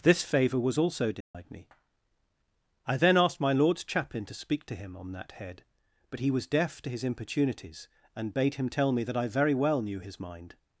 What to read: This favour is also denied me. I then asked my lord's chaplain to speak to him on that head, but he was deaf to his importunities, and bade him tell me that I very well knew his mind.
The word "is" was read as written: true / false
false